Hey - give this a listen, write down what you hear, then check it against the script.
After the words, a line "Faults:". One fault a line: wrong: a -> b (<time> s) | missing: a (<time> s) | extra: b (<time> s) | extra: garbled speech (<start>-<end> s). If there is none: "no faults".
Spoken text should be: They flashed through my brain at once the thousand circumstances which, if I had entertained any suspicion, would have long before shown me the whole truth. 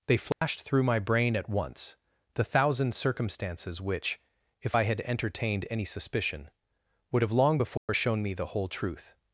They flashed through my brain at once the thousand circumstances which, if I had entertained any suspicion, would have long before shown me the whole truth.
Faults:
no faults